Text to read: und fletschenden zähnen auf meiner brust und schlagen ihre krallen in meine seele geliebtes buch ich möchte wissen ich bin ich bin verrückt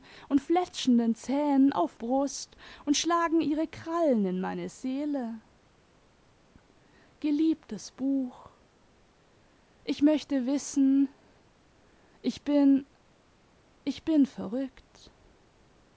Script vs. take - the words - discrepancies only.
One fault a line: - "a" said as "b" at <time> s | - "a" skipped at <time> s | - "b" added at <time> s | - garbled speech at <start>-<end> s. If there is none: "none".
- "meiner" skipped at 2.0 s